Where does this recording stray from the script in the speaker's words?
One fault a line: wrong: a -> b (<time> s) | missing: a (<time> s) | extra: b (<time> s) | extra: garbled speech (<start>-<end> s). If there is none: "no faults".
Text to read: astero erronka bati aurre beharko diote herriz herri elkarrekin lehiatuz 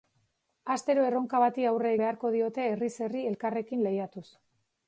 no faults